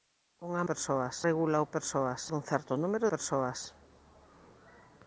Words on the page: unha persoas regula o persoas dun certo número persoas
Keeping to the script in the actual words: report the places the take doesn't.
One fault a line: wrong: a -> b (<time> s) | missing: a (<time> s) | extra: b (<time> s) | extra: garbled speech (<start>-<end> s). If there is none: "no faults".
no faults